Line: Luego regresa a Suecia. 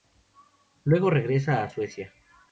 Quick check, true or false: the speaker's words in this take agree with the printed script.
true